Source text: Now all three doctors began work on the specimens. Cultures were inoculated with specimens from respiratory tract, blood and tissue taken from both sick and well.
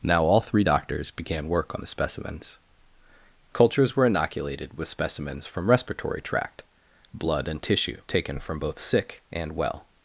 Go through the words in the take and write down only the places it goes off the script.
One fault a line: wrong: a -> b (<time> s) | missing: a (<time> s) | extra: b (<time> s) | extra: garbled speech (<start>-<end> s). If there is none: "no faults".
no faults